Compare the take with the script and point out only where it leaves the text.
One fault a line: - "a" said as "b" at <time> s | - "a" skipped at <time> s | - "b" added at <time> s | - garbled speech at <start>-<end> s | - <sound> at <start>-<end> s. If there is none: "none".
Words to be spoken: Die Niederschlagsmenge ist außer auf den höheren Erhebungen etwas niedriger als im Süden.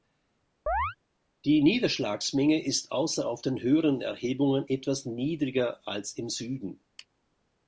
- chirp at 0.7-1.0 s